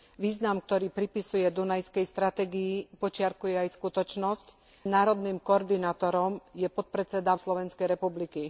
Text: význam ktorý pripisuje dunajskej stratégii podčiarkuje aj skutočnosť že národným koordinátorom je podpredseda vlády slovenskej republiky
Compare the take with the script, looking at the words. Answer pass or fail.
fail